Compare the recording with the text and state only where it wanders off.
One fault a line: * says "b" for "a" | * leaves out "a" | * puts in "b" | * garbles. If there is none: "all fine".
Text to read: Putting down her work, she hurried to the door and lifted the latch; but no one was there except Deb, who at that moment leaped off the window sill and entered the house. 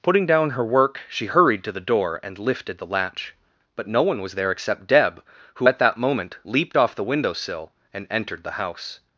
all fine